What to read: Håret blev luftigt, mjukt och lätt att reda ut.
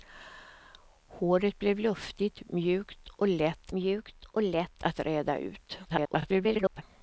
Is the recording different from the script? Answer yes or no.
yes